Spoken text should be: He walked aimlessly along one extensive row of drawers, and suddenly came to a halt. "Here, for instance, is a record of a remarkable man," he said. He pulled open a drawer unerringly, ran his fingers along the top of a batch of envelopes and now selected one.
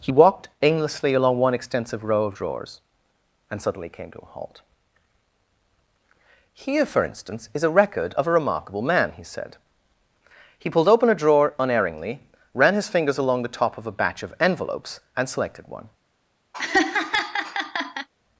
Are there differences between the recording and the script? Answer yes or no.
yes